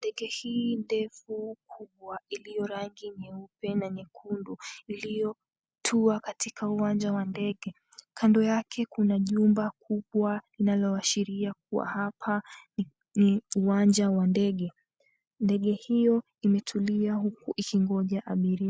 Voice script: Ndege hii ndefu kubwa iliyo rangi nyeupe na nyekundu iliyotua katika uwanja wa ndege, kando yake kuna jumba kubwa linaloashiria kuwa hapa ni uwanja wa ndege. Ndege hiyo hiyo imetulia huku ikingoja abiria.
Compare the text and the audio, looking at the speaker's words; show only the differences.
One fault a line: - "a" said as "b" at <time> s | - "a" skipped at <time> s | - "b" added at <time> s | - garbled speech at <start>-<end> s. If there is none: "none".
- "hiyo" skipped at 16.2 s